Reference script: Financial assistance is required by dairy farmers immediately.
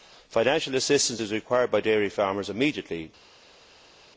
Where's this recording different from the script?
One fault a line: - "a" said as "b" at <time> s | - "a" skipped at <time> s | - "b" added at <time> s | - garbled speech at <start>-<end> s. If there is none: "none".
none